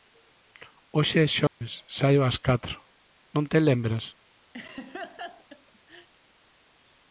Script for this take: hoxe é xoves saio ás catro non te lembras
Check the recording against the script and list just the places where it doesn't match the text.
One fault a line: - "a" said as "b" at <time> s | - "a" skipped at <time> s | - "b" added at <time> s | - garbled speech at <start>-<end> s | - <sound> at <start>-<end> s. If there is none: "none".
- dropout at 1.5-1.6 s
- laugh at 4.5-6.1 s